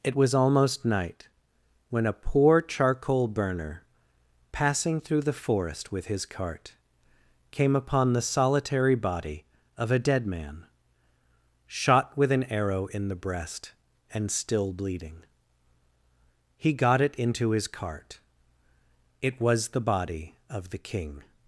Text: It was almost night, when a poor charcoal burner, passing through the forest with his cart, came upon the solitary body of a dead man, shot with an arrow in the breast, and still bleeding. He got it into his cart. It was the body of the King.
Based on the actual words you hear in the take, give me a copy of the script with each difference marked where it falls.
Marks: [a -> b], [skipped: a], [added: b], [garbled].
It was almost night, when a poor charcoal burner, passing through the forest with his cart, came upon the solitary body of a dead man, shot with an arrow in the breast, and still bleeding. He got it into his cart. It was the body of the King.